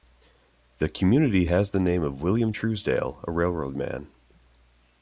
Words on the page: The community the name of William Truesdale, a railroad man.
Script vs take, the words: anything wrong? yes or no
yes